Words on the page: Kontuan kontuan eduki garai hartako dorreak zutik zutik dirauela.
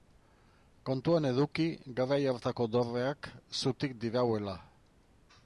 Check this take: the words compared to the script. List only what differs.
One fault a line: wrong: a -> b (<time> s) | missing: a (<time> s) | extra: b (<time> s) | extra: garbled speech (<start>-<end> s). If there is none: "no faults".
missing: kontuan (1.3 s)
missing: zutik (4.0 s)